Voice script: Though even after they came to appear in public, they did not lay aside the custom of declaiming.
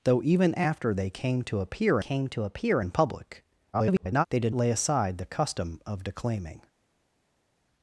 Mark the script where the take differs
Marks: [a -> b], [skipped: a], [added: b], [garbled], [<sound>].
Though even after they came to appear [added: came to appear] in public, [garbled] they did [skipped: not] lay aside the custom of declaiming.